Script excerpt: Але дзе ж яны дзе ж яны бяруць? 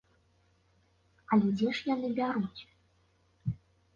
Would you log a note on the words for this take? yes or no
yes